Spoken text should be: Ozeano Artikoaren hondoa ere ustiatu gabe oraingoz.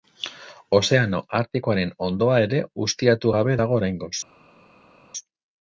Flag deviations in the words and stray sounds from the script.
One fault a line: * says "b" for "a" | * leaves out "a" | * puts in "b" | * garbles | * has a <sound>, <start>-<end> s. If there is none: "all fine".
* puts in "dago"